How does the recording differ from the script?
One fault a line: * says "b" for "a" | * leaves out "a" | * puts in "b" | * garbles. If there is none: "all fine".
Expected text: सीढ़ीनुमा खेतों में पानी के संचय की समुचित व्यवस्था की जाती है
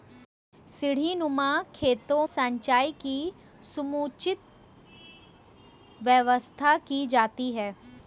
* leaves out "में पानी के"